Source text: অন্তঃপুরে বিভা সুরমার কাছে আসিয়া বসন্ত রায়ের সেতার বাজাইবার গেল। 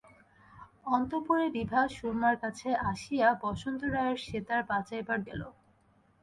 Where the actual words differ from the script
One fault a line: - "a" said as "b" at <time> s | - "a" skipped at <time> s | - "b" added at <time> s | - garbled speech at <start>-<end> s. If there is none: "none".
none